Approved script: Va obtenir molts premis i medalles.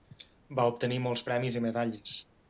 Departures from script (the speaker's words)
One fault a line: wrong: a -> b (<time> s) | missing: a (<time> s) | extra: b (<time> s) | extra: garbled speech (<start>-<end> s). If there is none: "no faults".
no faults